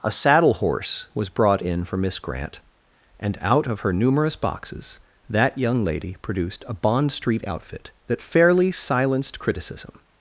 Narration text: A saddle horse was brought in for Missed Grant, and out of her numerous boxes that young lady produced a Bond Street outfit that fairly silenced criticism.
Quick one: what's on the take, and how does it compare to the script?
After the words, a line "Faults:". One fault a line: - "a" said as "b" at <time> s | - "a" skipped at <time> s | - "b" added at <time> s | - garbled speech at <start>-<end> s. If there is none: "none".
A saddle horse was brought in for Miss Grant, and out of her numerous boxes that young lady produced a Bond Street outfit that fairly silenced criticism.
Faults:
- "Missed" said as "Miss" at 2.0 s